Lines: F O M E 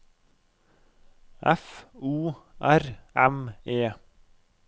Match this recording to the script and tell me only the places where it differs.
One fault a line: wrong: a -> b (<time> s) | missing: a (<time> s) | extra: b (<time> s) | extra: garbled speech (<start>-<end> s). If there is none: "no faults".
extra: R (2.6 s)